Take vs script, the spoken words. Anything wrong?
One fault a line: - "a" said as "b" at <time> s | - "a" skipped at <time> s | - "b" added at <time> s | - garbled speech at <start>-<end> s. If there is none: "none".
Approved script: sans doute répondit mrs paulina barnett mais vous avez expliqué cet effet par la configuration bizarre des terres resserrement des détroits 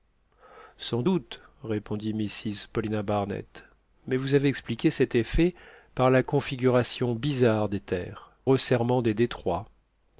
none